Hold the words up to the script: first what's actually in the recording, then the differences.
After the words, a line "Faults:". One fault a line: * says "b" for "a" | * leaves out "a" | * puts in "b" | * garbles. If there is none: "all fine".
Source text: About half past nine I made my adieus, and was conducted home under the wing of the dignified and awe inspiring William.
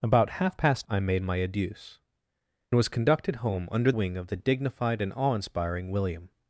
About half past I made my adieus, was conducted home under wing of the dignified and awe inspiring William.
Faults:
* leaves out "nine"
* leaves out "and"
* leaves out "the"